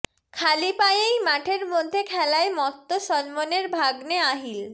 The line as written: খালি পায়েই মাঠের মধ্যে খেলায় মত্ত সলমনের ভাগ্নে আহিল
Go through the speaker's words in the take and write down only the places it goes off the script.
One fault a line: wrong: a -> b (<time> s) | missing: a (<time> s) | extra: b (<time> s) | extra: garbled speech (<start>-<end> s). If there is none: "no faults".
no faults